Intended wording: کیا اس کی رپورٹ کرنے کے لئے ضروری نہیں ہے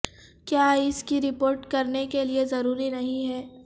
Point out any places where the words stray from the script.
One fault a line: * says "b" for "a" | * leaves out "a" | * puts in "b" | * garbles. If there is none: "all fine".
all fine